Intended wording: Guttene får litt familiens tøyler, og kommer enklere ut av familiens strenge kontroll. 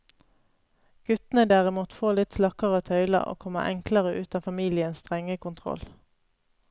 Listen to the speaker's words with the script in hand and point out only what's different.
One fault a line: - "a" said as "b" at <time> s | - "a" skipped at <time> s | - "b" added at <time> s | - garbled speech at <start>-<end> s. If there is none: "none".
- "derimot" added at 1.5 s
- "familiens" said as "slakkere" at 2.4 s